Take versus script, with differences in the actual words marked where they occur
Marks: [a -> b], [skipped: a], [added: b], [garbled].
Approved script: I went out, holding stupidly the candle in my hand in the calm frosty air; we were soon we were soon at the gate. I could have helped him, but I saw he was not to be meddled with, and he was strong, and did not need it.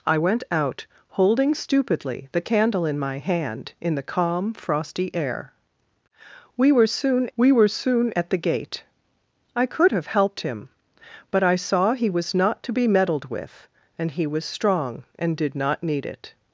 I went out, holding stupidly the candle in my hand in the calm frosty air; we were soon we were soon at the gate. I could have helped him, but I saw he was not to be meddled with, and he was strong, and did not need it.